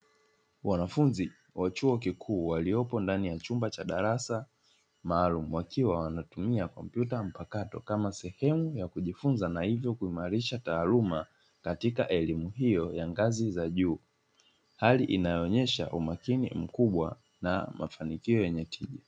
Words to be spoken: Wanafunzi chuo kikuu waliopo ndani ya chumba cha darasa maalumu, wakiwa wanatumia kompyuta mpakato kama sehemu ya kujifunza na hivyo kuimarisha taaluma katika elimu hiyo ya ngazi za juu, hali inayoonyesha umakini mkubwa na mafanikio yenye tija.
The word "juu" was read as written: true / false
true